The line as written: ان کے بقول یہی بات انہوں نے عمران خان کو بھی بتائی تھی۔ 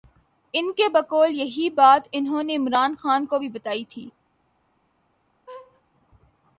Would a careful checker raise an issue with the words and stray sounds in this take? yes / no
yes